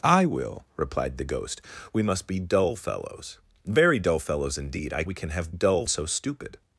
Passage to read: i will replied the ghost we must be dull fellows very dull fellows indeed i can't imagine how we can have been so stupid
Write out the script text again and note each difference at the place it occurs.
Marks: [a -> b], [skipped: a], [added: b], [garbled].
i will replied the ghost we must be dull fellows very dull fellows indeed i [skipped: can't imagine how] we can have [been -> dull] so stupid